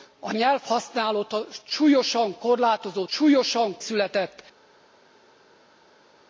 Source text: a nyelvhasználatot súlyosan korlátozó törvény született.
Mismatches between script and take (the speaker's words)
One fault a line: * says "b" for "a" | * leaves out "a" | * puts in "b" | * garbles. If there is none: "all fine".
* says "súlyosan" for "törvény"